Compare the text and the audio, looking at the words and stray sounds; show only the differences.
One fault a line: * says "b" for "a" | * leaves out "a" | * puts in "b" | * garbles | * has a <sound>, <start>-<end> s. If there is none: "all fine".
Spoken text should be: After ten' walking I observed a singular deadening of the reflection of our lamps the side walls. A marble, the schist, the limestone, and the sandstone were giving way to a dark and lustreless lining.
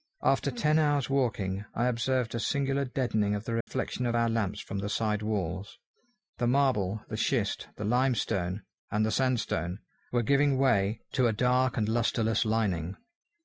* puts in "hours"
* has a dropout, 3.6-3.7 s
* puts in "from"
* says "The" for "A"